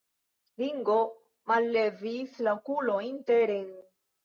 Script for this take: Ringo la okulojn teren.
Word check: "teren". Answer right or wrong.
right